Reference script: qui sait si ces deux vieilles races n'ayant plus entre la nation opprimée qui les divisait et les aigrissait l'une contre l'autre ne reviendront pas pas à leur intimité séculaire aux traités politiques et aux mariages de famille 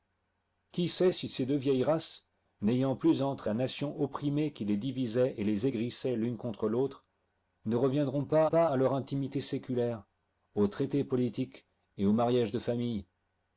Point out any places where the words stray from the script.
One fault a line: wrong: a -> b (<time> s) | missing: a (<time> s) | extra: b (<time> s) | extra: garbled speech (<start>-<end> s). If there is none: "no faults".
no faults